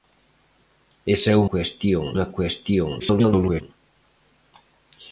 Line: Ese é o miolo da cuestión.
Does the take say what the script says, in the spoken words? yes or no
no